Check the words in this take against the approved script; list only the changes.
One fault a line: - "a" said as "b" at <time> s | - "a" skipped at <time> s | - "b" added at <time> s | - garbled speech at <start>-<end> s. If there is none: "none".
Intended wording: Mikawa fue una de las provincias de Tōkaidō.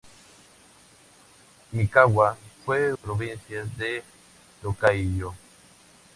- "una de las" skipped at 2.9 s